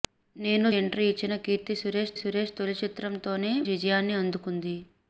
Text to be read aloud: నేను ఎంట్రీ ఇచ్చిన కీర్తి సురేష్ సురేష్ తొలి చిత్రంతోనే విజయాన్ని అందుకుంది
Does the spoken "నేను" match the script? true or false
true